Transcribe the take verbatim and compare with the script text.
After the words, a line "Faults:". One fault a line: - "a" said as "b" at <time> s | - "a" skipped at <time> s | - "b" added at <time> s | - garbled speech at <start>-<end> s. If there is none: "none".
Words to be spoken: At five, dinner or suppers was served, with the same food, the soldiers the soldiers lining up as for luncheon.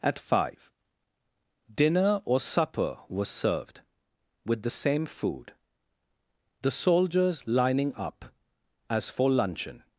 At five, dinner or supper was served, with the same food, the soldiers lining up as for luncheon.
Faults:
- "suppers" said as "supper" at 2.4 s
- "the soldiers" skipped at 7.5 s